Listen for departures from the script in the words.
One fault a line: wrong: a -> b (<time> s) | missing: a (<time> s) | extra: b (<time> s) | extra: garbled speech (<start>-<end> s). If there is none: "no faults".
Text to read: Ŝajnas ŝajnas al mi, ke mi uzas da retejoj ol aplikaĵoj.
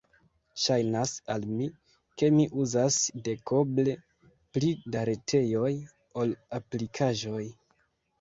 missing: ŝajnas (1.1 s)
extra: dekoble pli (3.3 s)